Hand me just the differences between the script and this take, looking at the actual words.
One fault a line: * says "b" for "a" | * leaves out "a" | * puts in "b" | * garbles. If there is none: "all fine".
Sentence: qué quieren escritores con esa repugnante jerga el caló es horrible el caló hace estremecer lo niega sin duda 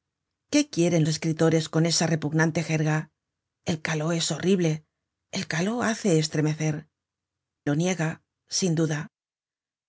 all fine